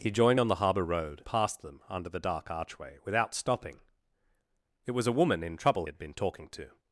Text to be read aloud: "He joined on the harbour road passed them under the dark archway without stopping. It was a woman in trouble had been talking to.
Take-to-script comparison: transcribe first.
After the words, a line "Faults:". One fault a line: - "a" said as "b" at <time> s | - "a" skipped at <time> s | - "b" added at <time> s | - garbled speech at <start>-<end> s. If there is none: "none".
"He joined on the harbour road passed them under the dark archway without stopping. It was a woman in trouble had been talking to.
Faults:
none